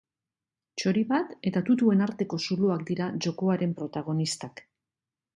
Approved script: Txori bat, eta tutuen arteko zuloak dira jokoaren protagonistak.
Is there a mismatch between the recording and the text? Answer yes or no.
no